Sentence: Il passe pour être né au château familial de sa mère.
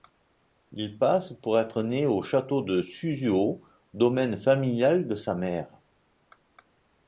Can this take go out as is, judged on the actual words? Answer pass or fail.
fail